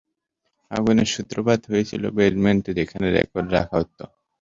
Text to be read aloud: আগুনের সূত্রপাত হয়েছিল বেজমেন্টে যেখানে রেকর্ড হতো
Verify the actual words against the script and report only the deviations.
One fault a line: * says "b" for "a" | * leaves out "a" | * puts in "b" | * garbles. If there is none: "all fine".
* puts in "রাখা"